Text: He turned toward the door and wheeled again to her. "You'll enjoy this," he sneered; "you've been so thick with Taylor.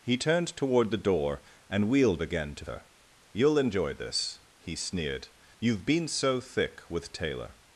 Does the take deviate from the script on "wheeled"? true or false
false